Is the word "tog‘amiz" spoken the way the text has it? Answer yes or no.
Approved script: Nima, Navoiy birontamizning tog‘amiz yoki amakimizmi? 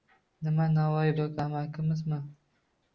no